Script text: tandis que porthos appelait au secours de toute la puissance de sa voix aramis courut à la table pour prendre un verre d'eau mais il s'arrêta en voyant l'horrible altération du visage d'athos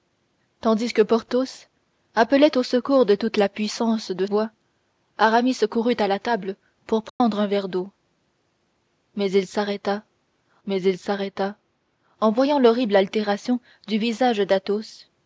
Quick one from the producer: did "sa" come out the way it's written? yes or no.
no